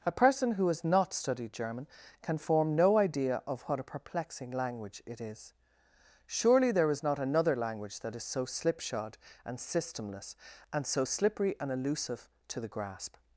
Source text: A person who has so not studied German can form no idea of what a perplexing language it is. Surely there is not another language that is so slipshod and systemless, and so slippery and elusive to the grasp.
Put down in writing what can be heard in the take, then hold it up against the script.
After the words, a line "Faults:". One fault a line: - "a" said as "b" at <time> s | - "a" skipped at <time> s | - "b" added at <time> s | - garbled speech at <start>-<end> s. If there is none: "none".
A person who has not studied German can form no idea of what a perplexing language it is. Surely there is not another language that is so slipshod and systemless, and so slippery and elusive to the grasp.
Faults:
- "so" skipped at 0.8 s